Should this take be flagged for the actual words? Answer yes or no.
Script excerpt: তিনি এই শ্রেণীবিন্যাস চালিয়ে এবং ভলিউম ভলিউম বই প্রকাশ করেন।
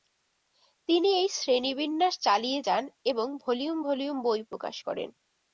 yes